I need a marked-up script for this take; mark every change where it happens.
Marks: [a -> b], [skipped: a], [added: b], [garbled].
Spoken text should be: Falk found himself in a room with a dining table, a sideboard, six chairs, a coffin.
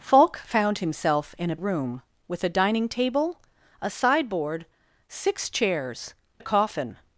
Falk found himself in a room with a dining table, a sideboard, six chairs, a coffin.